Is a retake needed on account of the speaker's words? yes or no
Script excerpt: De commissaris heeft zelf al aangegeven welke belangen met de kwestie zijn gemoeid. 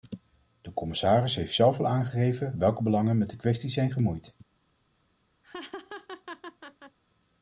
no